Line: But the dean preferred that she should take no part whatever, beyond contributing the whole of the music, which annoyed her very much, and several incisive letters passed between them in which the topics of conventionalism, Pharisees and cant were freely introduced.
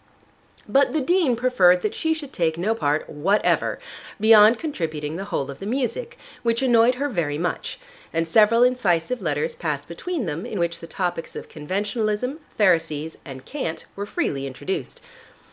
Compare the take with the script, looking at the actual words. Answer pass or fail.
pass